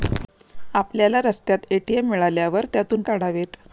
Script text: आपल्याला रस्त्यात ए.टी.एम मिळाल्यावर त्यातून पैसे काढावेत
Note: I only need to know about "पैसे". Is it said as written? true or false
false